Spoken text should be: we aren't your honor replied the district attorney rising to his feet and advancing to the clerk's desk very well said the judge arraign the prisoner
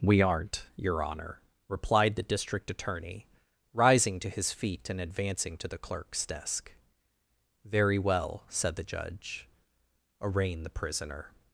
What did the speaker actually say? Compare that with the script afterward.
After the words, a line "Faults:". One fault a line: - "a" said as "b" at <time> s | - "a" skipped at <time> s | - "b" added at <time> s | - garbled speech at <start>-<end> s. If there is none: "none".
we aren't your honor replied the district attorney rising to his feet and advancing to the clerk's desk very well said the judge arraign the prisoner
Faults:
none